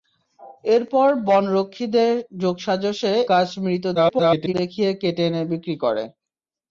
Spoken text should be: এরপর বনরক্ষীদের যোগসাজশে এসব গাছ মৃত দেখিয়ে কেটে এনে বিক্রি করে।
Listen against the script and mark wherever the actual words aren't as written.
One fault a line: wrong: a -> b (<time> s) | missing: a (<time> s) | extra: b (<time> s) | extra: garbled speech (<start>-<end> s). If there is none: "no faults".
missing: এসব (3.1 s)
extra: garbled speech (3.9-4.5 s)